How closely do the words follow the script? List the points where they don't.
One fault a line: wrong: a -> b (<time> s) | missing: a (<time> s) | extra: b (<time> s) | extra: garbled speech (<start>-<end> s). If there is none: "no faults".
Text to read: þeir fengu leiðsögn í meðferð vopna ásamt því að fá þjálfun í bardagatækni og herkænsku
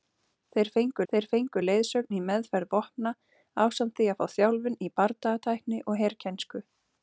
extra: þeir fengu (1.1 s)